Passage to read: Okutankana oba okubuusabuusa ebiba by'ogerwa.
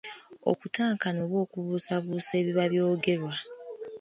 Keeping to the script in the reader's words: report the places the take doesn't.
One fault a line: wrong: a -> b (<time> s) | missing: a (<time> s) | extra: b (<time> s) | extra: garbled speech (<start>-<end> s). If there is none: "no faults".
no faults